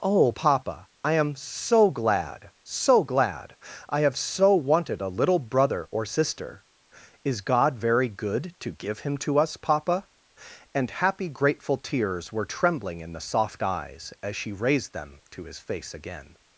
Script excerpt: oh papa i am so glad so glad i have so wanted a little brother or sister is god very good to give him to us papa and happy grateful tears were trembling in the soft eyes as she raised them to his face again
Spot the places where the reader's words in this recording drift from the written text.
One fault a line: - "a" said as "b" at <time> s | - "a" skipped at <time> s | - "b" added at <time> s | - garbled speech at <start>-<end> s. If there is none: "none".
none